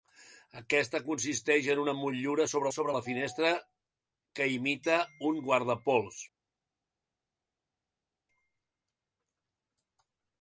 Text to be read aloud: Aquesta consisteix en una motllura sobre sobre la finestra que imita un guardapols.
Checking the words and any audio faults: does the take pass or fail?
pass